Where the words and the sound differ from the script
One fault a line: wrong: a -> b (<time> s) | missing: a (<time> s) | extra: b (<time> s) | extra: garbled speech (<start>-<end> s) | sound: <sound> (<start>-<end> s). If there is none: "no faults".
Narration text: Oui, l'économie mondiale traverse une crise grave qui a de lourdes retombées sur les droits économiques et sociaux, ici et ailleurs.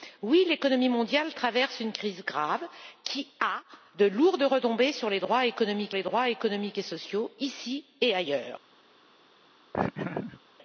extra: les droits économiques (5.9 s)
sound: laugh (9.7-10.4 s)